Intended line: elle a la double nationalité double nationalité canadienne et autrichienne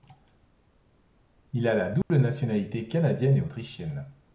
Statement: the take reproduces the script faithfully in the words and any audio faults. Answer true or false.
false